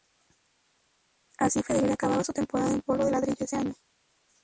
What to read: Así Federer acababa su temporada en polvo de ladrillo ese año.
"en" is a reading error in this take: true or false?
false